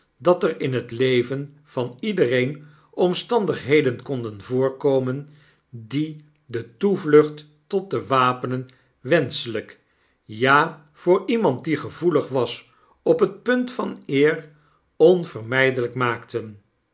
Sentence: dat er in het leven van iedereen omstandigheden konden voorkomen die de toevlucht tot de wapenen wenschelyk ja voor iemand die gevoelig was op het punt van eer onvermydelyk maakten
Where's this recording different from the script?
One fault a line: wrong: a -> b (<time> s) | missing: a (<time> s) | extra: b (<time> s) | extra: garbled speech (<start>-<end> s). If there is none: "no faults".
no faults